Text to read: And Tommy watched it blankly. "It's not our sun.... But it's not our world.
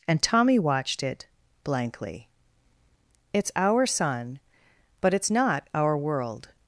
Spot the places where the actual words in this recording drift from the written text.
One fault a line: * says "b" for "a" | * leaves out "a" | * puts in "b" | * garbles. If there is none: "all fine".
* leaves out "not"